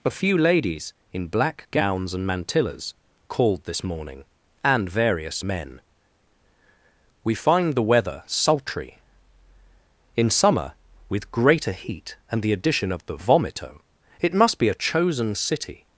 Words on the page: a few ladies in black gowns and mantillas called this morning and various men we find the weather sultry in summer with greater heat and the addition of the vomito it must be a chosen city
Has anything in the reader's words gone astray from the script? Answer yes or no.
no